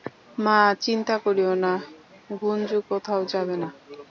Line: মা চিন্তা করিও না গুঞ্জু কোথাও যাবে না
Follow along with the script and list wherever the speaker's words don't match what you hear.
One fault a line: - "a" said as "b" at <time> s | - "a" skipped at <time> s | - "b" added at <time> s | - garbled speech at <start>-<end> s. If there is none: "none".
none